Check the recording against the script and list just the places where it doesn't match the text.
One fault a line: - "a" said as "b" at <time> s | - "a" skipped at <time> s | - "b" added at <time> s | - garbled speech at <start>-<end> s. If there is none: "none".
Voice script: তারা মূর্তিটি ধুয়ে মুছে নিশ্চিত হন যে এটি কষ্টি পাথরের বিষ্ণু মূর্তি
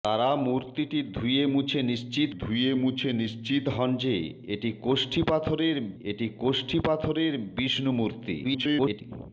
- "ধুয়ে মুছে নিশ্চিত" added at 2.4 s
- "এটি কষ্টি পাথরের" added at 6.0 s
- garbled speech at 8.4-9.0 s